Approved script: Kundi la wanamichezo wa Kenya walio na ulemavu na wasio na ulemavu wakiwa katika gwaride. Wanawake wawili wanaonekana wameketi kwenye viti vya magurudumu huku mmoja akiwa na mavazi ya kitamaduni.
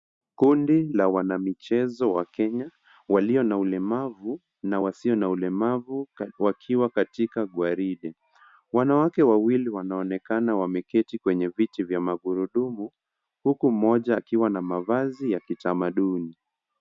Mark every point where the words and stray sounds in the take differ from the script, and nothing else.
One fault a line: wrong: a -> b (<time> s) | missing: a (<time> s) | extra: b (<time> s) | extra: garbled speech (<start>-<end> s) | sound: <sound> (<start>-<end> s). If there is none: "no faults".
no faults